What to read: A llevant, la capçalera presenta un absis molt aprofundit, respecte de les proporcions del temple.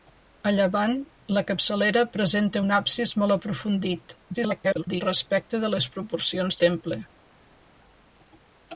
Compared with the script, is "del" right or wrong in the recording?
wrong